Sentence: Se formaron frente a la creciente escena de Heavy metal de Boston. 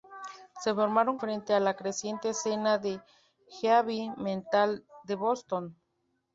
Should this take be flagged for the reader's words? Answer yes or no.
no